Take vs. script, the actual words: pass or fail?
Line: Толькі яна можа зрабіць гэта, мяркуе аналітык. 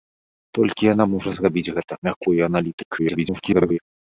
fail